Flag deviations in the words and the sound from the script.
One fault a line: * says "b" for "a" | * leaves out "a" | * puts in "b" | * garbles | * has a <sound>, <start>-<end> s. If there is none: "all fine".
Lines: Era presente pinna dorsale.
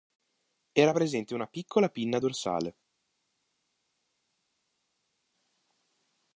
* puts in "una piccola"